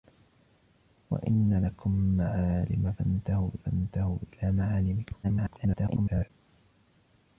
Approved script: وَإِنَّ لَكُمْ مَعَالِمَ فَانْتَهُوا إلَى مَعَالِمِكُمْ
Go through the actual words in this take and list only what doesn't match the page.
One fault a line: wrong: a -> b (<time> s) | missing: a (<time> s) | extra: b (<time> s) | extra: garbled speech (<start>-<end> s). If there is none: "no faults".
extra: فَانْتَهُوا (3.7 s)
extra: garbled speech (5.2-6.3 s)